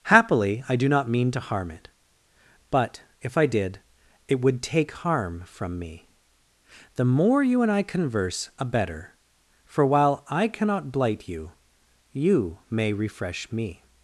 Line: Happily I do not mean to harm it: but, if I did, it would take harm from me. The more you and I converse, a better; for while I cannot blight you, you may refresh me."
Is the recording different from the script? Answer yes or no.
no